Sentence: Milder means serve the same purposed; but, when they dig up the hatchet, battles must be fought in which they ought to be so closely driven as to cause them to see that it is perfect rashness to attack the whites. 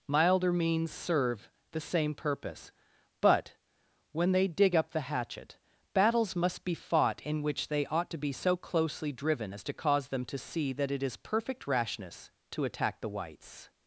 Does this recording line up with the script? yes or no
no